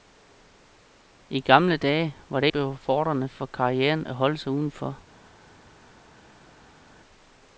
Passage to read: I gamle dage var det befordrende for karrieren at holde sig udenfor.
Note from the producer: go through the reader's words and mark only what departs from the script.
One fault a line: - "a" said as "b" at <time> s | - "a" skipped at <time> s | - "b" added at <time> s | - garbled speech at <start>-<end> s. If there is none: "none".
none